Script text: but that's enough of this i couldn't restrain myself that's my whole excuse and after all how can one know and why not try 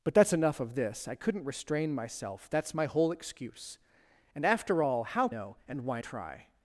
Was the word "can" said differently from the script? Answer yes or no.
yes